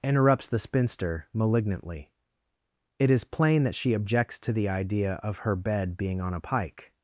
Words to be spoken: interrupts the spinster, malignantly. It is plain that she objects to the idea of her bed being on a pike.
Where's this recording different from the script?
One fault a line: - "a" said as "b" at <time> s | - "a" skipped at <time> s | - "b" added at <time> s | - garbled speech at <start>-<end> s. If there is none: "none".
none